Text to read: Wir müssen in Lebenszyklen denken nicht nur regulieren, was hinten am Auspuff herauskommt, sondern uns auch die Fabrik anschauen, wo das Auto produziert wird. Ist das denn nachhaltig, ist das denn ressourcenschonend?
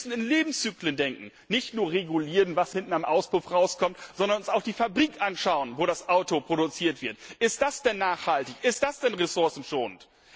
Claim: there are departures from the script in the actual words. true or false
false